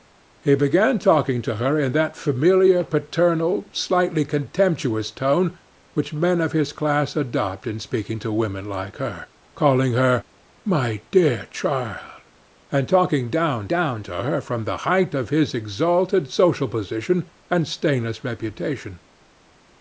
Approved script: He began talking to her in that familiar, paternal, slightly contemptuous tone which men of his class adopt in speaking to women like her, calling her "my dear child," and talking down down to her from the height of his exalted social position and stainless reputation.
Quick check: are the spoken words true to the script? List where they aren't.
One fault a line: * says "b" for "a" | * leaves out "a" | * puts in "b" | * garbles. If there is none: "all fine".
all fine